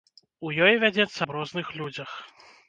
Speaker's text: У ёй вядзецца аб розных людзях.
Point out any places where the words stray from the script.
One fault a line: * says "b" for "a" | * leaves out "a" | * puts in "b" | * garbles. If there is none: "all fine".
all fine